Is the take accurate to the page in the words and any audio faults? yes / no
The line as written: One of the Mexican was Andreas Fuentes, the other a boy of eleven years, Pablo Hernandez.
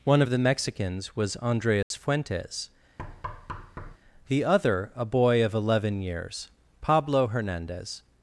no